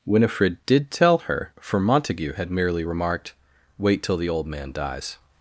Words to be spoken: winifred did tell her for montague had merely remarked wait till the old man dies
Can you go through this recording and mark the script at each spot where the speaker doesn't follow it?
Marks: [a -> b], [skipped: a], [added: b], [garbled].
winifred did tell her for montague had merely remarked wait till the old man dies